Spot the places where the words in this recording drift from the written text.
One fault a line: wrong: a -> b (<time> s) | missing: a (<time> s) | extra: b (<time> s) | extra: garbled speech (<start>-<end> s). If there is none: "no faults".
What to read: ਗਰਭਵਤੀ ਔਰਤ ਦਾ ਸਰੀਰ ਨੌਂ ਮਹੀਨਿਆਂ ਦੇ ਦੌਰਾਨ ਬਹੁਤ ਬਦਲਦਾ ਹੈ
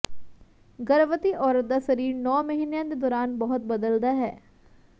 no faults